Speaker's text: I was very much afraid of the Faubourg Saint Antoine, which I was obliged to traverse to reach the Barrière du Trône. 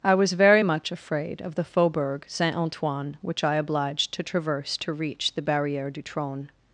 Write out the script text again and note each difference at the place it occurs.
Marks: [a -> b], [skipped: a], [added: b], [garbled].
I was very much afraid of the Faubourg Saint Antoine, which I [skipped: was] obliged to traverse to reach the Barrière du Trône.